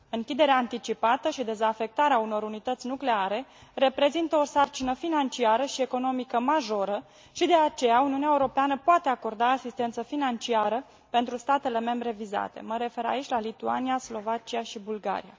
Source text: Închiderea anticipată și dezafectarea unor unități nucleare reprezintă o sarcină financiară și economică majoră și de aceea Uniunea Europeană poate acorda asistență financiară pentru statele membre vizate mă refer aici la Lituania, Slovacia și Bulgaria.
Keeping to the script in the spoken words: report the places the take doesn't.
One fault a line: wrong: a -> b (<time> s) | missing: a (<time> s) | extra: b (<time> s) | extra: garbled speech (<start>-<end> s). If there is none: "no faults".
no faults